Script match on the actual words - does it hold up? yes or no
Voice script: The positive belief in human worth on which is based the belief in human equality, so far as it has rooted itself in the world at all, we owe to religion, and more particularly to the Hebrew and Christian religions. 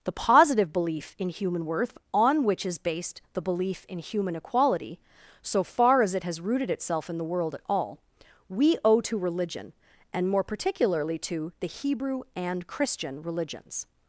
yes